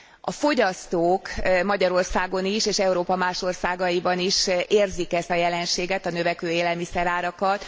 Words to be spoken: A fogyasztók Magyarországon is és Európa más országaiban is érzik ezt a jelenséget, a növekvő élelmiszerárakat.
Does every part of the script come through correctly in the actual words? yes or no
yes